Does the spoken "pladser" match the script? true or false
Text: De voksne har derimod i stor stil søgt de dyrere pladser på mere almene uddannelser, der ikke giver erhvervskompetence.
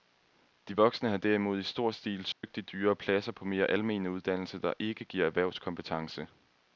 true